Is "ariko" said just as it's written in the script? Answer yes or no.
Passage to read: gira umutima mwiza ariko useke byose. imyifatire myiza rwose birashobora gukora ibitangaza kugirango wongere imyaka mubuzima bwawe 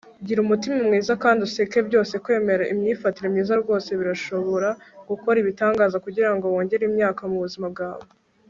no